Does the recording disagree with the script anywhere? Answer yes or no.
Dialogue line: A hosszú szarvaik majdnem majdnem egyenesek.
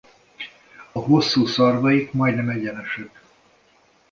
yes